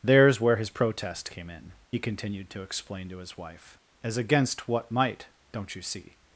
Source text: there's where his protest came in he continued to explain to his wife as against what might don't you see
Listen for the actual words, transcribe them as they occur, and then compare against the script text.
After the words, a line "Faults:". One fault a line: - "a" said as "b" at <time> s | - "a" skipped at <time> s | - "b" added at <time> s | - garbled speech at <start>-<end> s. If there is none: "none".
there's where his protest came in he continued to explain to his wife as against what might don't you see
Faults:
none